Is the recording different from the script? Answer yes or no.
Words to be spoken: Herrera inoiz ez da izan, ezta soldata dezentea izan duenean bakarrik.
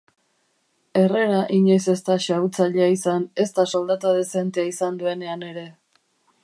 yes